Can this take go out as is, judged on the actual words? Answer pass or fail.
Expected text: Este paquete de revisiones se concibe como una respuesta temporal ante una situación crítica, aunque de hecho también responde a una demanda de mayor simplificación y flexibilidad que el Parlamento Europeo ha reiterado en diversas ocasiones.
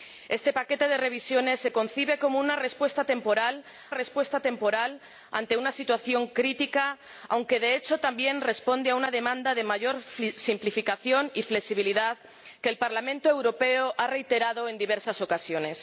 fail